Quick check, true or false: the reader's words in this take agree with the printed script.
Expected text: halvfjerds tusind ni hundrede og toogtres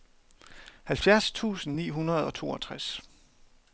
true